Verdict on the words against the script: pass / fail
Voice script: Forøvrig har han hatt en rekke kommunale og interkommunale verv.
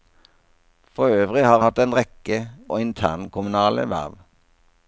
fail